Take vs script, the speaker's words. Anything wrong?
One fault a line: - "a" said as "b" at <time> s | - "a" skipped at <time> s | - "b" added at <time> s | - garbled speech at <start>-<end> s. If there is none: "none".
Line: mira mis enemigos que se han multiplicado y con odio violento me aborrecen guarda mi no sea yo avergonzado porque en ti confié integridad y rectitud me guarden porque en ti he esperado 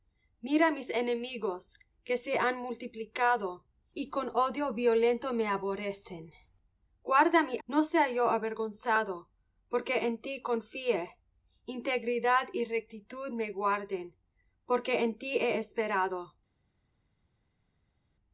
none